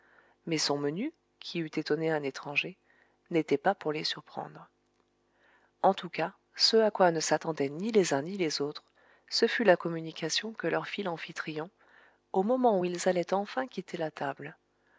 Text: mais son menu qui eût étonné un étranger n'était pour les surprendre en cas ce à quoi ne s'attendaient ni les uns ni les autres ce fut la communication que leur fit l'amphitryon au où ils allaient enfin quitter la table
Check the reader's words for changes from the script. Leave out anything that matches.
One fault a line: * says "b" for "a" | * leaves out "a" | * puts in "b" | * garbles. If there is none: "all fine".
* puts in "pas"
* puts in "tout"
* puts in "moment"